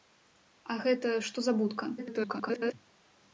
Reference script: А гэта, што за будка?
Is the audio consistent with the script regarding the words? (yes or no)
no